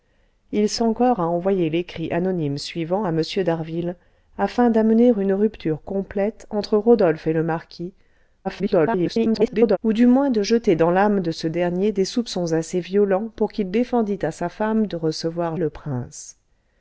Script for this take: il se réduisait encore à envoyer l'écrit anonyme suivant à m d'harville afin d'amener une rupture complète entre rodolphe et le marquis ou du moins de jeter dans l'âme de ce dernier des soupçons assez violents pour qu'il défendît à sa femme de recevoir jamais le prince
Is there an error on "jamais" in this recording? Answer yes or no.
yes